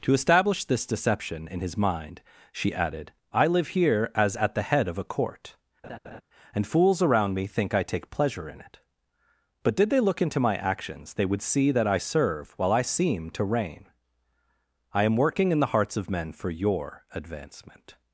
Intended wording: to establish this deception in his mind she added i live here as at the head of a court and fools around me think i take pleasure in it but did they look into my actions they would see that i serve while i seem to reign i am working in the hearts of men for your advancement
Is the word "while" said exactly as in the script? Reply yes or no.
yes